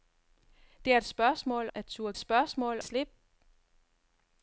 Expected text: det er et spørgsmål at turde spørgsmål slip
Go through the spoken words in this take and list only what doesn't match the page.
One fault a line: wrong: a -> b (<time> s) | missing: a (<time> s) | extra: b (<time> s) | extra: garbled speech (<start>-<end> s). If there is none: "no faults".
no faults